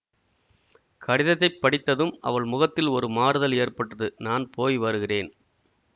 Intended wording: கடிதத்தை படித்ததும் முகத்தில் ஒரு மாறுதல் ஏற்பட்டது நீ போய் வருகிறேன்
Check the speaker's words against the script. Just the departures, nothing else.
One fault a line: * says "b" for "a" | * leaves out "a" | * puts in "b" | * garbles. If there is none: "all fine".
* puts in "அவள்"
* says "நான்" for "நீ"